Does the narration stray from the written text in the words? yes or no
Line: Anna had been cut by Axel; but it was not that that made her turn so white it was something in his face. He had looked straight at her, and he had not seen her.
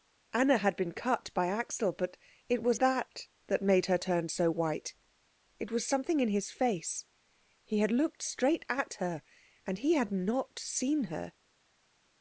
yes